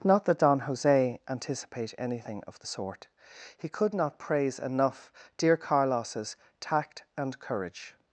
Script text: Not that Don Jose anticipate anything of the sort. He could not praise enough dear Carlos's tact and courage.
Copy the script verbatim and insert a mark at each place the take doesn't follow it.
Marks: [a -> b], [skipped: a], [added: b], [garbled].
Not that Don Jose anticipate anything of the sort. He could not praise enough dear Carlos's tact and courage.